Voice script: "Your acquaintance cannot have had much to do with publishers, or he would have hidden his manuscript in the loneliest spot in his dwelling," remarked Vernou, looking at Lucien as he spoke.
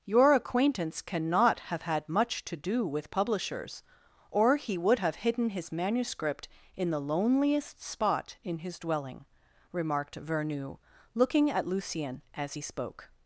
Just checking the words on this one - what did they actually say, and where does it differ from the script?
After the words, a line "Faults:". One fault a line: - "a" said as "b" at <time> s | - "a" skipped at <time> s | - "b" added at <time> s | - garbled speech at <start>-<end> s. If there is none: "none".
"Your acquaintance cannot have had much to do with publishers, or he would have hidden his manuscript in the loneliest spot in his dwelling," remarked Vernou, looking at Lucien as he spoke.
Faults:
none